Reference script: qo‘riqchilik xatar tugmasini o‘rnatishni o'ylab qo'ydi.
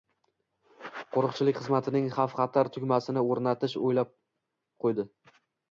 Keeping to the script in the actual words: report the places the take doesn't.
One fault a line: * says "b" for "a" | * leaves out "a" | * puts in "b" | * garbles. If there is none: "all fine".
* puts in "xizmatining xavf"